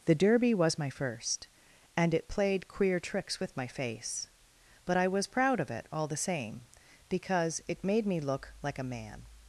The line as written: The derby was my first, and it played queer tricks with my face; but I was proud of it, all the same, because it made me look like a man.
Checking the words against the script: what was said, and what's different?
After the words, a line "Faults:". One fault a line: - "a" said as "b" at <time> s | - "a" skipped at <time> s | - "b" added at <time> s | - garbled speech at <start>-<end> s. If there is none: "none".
The derby was my first, and it played queer tricks with my face; but I was proud of it, all the same, because it made me look like a man.
Faults:
none